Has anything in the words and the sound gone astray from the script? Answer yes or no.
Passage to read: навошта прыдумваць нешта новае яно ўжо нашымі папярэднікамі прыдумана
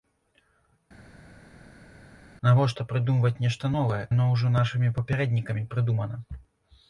no